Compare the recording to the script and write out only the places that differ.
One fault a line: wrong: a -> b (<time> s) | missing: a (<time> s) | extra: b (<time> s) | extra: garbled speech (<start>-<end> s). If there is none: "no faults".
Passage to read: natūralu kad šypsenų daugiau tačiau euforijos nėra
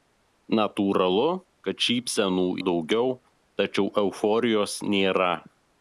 no faults